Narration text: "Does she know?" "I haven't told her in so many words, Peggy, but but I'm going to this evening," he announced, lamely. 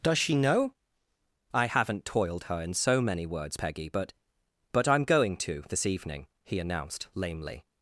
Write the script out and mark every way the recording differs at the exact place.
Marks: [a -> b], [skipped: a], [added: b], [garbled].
"Does she know?" "I haven't [told -> toiled] her in so many words, Peggy, but but I'm going to this evening," he announced, lamely.